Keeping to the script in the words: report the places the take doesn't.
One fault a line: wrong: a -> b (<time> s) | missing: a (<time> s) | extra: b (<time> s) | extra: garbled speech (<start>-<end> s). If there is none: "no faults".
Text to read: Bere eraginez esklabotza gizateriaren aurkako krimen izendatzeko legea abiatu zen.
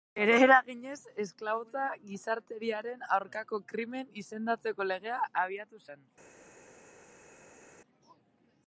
no faults